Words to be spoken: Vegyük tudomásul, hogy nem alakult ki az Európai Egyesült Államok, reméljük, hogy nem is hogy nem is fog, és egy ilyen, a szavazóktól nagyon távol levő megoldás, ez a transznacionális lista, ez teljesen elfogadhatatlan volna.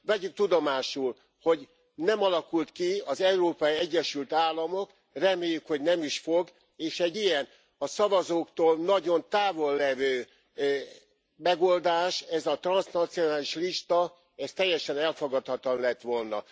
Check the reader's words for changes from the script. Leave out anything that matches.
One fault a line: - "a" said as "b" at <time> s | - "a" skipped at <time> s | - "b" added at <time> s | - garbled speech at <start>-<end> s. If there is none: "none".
- "hogy nem is" skipped at 6.2 s
- "lett" added at 15.8 s